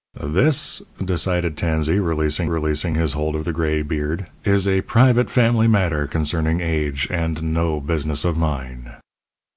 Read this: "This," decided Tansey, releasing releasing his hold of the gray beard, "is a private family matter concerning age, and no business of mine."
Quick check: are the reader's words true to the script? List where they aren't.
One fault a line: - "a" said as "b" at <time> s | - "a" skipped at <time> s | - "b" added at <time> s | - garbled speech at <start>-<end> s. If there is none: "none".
none